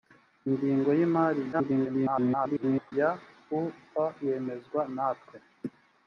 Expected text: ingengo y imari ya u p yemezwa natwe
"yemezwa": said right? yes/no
yes